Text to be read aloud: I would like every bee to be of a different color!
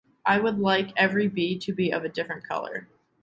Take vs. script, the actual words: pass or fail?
pass